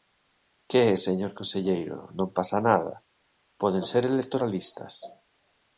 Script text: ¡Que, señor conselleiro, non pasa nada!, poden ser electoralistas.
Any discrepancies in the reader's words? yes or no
no